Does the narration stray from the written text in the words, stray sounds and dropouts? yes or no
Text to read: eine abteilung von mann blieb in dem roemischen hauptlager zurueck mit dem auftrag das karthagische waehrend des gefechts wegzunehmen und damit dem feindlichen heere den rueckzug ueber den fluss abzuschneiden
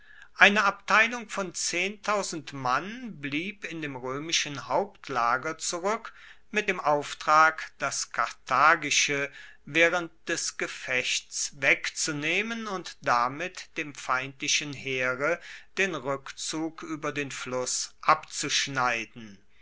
no